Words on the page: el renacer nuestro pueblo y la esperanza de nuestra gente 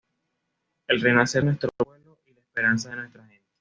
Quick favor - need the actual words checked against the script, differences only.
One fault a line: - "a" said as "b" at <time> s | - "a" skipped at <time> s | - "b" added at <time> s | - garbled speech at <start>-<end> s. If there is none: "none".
none